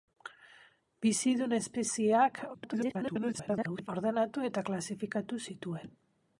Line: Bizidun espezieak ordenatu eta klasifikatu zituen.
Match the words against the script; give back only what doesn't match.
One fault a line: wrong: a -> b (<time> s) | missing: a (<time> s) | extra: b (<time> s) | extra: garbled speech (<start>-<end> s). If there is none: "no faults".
extra: garbled speech (2.5-3.9 s)